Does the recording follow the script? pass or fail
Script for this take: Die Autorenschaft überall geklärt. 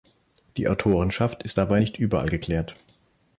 fail